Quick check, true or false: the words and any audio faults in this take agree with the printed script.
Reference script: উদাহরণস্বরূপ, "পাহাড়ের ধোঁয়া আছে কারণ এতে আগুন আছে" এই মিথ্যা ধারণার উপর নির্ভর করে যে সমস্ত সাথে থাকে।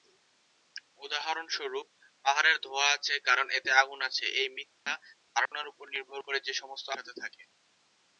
false